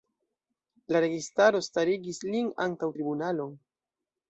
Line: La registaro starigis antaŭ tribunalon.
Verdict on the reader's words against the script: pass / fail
fail